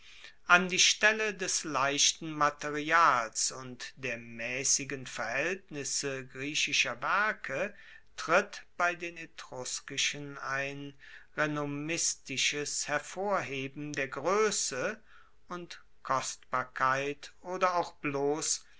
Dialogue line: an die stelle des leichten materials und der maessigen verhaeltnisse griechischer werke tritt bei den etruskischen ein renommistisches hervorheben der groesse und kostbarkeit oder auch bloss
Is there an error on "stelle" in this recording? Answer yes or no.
no